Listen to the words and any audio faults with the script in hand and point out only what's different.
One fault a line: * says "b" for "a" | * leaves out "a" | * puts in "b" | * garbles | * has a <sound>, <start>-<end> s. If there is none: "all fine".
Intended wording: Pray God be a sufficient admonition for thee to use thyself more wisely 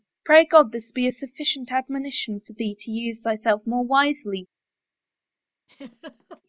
* puts in "this"
* has a laugh, 5.7-6.4 s